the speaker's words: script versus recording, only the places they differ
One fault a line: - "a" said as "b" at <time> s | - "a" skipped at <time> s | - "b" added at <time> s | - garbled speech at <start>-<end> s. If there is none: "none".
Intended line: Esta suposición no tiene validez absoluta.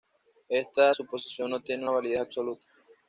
none